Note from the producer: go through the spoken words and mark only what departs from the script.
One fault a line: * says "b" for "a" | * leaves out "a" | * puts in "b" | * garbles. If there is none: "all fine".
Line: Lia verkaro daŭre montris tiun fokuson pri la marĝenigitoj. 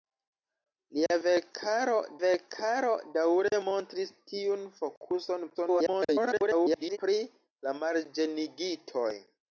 * puts in "verkaro"
* garbles